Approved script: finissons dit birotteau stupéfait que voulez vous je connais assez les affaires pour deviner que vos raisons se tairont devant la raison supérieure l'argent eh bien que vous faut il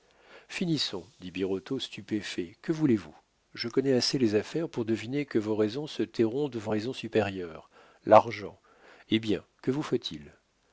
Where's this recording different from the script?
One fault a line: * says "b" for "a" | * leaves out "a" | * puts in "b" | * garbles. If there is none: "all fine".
* leaves out "la"